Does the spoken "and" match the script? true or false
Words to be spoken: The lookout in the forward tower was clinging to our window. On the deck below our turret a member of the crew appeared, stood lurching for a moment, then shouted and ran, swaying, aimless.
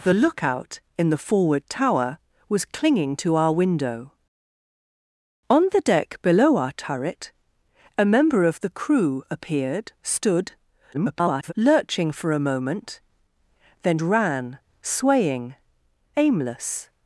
false